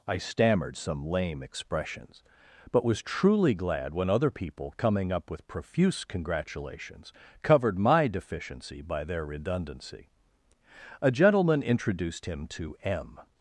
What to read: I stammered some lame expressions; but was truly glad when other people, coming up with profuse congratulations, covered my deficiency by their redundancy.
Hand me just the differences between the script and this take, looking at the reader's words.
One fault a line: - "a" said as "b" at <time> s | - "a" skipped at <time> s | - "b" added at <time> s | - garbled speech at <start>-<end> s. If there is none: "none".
- "A gentleman introduced him to M" added at 11.0 s